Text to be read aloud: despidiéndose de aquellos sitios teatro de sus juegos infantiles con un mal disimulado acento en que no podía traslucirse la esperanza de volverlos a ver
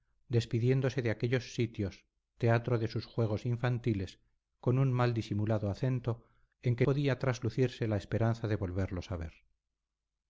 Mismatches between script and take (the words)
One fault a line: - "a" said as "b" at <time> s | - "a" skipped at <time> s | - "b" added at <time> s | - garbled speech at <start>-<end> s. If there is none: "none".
- "no" skipped at 6.9 s